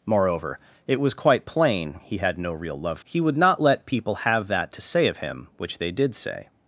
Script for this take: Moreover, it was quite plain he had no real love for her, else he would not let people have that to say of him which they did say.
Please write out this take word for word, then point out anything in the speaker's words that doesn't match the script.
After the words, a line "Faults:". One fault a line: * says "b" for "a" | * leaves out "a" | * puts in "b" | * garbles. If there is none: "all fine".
Moreover, it was quite plain he had no real love he would not let people have that to say of him which they did say.
Faults:
* leaves out "for her else"